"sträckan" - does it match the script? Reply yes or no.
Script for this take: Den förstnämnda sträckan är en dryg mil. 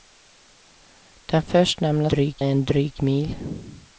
no